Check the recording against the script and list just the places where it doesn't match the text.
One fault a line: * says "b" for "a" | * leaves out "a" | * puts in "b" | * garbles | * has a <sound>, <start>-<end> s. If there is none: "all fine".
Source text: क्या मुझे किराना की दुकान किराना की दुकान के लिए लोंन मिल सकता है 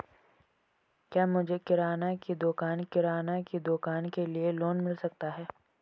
all fine